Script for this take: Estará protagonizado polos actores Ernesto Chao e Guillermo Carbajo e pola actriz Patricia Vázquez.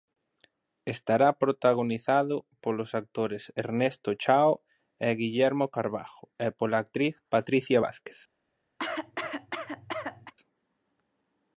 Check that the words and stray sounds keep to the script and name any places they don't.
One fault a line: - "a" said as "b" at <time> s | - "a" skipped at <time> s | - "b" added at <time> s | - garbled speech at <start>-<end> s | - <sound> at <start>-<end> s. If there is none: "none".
- cough at 8.8-10.3 s